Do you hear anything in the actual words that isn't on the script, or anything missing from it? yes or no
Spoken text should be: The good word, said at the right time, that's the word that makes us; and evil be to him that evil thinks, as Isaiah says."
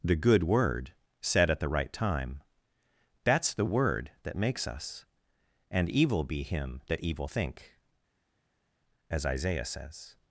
yes